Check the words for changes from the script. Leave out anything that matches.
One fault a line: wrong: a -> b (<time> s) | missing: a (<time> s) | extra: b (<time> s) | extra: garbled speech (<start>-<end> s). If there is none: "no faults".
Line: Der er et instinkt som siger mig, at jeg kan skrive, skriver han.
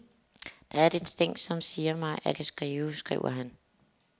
missing: jeg (2.4 s)